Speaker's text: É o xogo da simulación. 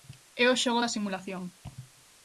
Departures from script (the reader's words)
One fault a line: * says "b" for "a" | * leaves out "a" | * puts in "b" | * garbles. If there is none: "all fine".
all fine